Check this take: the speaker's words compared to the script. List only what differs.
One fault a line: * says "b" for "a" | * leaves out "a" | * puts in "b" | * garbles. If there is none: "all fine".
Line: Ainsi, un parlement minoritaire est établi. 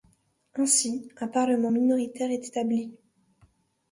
all fine